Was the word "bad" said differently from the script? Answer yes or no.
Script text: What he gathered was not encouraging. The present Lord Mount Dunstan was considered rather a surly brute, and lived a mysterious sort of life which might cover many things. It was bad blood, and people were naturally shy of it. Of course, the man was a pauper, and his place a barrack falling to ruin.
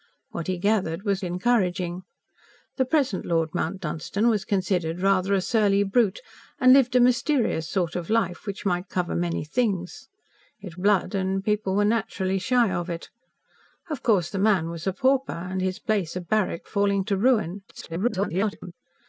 yes